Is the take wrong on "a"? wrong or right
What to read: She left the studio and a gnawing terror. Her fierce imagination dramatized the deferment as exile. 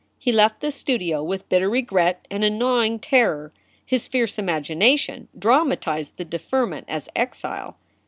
right